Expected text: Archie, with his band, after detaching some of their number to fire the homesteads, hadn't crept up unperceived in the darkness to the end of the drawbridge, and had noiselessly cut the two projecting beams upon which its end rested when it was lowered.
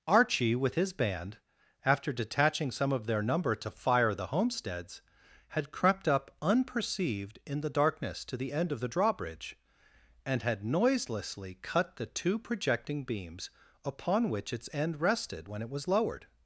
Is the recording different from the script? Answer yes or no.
yes